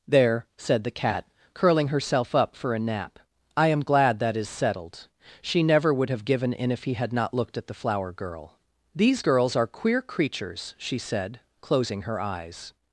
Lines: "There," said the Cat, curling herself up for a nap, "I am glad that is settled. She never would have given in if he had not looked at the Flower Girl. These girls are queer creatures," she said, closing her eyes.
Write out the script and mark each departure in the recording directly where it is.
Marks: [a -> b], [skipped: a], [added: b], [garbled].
"There," said the Cat, curling herself up for a nap, "I am glad that is settled. She never would have given in if he had not looked at the Flower Girl. These girls are queer creatures," she said, closing her eyes.